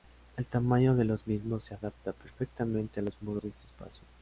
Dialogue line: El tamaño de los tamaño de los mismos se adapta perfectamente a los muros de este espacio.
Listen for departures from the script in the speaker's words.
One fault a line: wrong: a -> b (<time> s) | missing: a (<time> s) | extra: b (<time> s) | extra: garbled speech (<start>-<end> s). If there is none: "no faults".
missing: tamaño de los (1.3 s)